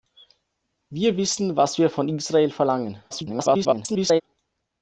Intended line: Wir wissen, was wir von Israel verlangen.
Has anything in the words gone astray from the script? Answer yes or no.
yes